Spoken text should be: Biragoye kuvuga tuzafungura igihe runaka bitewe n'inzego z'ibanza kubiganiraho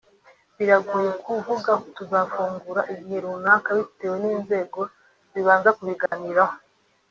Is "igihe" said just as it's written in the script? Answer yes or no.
yes